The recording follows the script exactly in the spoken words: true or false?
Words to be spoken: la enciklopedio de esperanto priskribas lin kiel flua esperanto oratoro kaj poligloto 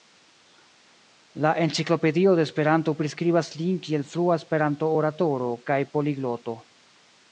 true